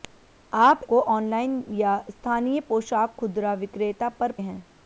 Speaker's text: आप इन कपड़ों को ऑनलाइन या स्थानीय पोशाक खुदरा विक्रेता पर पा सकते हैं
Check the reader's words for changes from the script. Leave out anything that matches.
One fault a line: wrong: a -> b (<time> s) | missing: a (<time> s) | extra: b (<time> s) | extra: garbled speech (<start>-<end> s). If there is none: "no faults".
missing: इन कपड़ों (0.8 s)
missing: पा सकते (4.3 s)